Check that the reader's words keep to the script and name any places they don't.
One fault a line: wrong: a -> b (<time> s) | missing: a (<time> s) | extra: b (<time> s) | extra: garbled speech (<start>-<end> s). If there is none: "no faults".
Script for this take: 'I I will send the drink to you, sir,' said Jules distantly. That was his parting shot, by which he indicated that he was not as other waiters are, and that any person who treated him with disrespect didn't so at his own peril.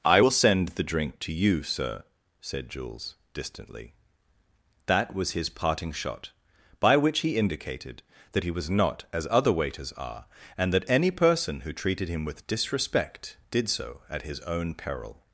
missing: I (0.2 s)
wrong: didn't -> did (13.5 s)